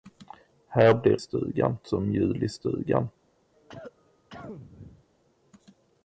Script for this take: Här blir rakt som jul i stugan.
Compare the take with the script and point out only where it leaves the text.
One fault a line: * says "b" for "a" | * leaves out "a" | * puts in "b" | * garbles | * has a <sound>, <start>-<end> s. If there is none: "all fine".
* says "stugan" for "rakt"
* has a cough, 3.5-5.0 s